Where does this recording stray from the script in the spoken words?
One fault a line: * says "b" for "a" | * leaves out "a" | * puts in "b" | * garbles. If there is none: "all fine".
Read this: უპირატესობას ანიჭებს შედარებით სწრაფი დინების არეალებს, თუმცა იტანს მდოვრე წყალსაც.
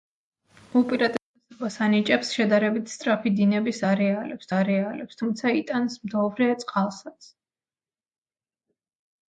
* puts in "არეალებს"